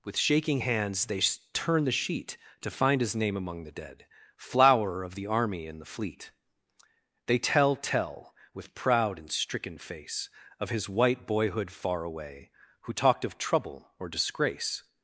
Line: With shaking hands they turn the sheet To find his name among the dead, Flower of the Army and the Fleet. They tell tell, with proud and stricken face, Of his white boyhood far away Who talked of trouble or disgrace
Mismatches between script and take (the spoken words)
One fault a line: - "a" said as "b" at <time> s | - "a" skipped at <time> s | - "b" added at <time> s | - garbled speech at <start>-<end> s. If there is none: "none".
none